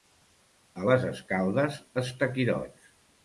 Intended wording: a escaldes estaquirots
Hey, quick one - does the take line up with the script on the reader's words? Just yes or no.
no